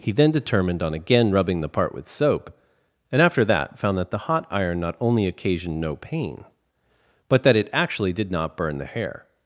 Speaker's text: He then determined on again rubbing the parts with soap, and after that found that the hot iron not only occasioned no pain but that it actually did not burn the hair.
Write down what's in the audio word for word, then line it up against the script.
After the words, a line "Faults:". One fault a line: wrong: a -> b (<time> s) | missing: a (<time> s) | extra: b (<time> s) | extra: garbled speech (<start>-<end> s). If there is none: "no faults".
He then determined on again rubbing the part with soap, and after that found that the hot iron not only occasioned no pain but that it actually did not burn the hair.
Faults:
wrong: parts -> part (1.7 s)